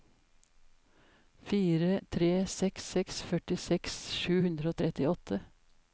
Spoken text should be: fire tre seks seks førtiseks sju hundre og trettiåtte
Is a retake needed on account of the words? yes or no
no